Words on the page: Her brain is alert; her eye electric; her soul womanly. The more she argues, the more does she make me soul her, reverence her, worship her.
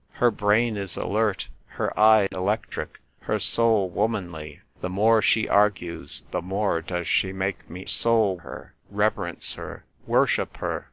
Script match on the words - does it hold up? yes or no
yes